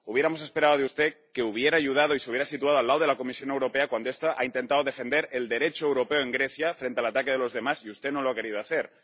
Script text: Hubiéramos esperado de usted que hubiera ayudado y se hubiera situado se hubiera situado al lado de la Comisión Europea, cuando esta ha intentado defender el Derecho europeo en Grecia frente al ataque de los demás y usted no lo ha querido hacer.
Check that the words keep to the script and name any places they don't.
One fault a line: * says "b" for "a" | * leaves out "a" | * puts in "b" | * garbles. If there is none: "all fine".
* leaves out "se hubiera situado"